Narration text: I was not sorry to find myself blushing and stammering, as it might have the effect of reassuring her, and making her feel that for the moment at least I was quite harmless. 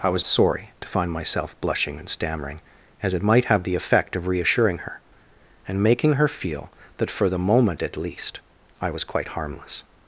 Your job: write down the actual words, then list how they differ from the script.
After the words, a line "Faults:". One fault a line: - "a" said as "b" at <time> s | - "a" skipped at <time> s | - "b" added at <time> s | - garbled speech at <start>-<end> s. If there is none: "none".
I was sorry to find myself blushing and stammering, as it might have the effect of reassuring her, and making her feel that for the moment at least I was quite harmless.
Faults:
- "not" skipped at 0.2 s